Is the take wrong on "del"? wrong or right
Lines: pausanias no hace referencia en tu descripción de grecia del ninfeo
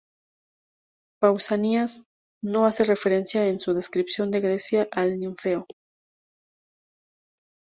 wrong